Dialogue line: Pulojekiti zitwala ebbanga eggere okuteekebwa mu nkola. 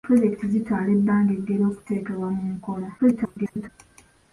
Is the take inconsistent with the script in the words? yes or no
yes